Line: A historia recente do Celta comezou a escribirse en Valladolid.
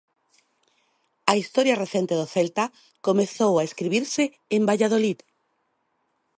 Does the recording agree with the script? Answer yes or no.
yes